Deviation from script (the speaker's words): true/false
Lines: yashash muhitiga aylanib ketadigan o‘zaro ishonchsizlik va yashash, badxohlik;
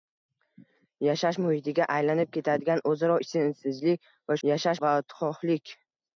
false